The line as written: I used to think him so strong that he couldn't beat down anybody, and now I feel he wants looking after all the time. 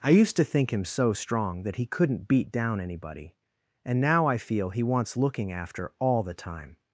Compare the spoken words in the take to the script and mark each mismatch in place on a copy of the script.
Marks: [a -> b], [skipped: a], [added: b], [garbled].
I used to think him so strong that he couldn't beat down anybody, and now I feel he wants looking after all the time.